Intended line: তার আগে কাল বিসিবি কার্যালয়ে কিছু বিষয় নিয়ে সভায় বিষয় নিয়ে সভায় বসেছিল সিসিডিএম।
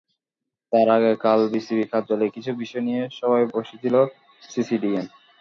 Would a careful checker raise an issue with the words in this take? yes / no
yes